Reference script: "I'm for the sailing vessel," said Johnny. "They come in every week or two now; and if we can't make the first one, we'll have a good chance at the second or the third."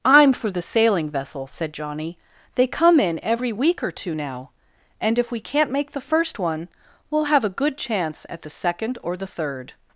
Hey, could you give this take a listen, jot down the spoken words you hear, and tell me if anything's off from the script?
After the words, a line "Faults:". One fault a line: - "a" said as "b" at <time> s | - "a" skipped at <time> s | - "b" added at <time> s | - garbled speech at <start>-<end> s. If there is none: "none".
"I'm for the sailing vessel," said Johnny. "They come in every week or two now; and if we can't make the first one, we'll have a good chance at the second or the third."
Faults:
none